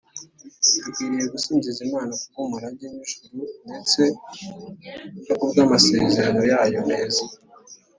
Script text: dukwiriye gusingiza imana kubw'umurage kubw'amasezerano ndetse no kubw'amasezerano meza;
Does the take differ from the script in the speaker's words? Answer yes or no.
yes